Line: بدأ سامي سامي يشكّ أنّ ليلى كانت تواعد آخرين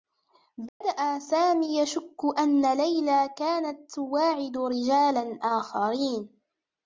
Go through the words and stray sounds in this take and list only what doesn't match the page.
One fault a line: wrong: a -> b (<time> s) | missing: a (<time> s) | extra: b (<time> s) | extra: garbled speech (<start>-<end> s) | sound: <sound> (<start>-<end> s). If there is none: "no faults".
sound: dropout (0.7-0.8 s)
missing: سامي (1.8 s)
extra: رجالا (4.6 s)